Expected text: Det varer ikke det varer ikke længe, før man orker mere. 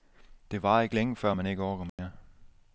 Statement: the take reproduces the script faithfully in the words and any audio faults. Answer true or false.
false